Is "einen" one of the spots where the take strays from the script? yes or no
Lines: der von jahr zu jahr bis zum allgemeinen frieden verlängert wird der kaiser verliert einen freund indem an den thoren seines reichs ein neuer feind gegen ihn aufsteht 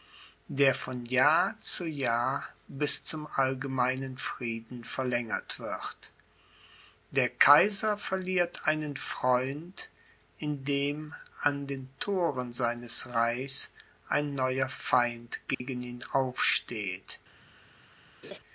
no